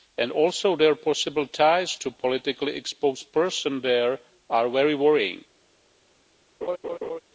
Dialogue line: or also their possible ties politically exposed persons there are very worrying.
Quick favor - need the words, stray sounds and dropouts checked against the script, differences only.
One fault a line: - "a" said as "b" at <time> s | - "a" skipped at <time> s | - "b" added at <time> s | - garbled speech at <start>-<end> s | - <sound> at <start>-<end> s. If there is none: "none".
- "or" said as "and" at 0.2 s
- "to" added at 2.0 s
- laugh at 6.6-7.2 s